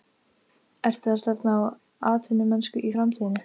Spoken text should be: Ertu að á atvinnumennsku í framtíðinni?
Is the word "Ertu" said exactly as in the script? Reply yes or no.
yes